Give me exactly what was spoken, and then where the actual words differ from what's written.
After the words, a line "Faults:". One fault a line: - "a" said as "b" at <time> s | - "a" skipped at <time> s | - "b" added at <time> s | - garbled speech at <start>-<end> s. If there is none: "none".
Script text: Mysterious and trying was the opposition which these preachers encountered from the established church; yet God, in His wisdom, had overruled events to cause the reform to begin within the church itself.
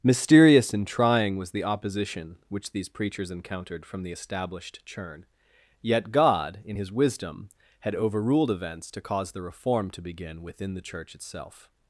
Mysterious and trying was the opposition which these preachers encountered from the established churn; yet God, in His wisdom, had overruled events to cause the reform to begin within the church itself.
Faults:
- "church" said as "churn" at 4.9 s